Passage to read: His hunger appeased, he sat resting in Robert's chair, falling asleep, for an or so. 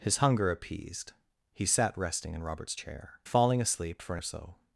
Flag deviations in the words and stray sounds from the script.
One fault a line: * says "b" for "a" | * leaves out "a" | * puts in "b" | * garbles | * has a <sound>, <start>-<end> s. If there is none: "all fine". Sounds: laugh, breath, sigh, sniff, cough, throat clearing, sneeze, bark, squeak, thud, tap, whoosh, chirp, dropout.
all fine